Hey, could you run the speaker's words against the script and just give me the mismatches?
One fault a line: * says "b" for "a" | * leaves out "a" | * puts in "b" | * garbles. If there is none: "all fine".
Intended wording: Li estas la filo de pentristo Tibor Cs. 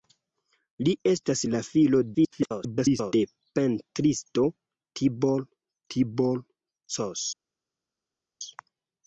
* garbles
* puts in "Tibor"